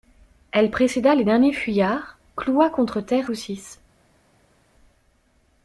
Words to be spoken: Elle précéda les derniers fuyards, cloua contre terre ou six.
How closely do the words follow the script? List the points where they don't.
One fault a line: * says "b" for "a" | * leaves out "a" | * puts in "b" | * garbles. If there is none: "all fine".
all fine